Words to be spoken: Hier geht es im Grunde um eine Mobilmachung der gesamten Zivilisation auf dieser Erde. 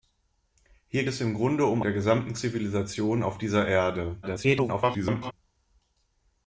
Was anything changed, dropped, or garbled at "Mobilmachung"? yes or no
yes